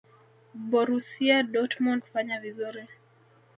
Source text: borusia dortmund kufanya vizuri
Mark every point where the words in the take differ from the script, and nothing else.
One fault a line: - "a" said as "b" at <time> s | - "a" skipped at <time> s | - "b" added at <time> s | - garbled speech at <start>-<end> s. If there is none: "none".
none